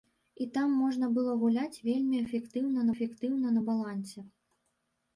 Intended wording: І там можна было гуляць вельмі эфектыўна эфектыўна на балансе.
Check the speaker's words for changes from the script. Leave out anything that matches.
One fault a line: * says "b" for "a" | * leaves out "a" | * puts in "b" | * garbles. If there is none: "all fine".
all fine